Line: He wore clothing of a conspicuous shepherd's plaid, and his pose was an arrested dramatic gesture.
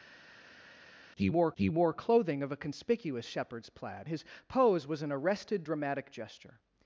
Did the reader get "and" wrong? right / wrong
wrong